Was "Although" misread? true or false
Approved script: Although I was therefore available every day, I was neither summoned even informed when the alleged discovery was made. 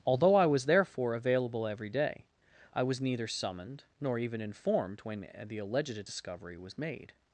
false